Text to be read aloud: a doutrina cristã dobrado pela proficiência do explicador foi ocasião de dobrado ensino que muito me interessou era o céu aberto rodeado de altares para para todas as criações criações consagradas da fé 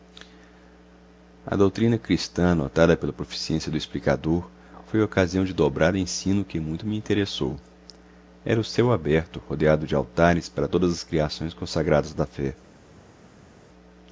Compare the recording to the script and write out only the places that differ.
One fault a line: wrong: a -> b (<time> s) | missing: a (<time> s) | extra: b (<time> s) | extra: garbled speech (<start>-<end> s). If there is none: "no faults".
wrong: dobrado -> anotada (2.5 s)
missing: para (10.7 s)
missing: criações (11.5 s)